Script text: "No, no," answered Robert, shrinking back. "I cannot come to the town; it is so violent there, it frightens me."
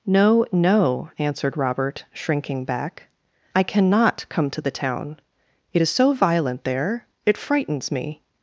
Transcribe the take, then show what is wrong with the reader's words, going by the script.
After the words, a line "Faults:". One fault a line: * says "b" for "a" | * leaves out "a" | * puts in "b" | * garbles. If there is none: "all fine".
"No, no," answered Robert, shrinking back. "I cannot come to the town; it is so violent there, it frightens me."
Faults:
all fine